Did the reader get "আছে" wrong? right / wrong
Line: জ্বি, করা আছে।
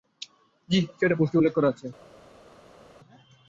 right